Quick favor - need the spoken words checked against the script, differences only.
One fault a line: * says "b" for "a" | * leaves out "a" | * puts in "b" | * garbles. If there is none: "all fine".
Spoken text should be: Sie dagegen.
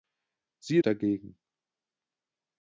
all fine